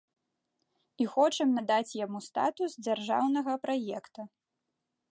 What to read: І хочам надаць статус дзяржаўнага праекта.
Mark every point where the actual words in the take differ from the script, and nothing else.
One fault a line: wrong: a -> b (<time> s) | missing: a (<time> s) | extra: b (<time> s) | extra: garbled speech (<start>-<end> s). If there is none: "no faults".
extra: яму (2.1 s)